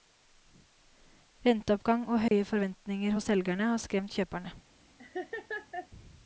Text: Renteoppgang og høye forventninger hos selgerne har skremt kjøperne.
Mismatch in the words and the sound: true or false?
true